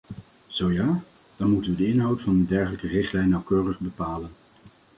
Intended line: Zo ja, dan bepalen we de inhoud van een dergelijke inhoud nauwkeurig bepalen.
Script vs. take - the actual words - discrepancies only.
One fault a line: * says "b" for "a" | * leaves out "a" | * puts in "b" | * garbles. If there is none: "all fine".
* says "moeten" for "bepalen"
* says "richtlijn" for "inhoud"